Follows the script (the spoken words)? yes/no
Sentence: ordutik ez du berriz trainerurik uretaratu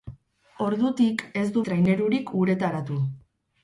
no